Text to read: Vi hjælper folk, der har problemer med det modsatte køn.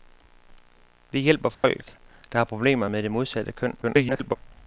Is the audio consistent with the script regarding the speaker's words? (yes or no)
no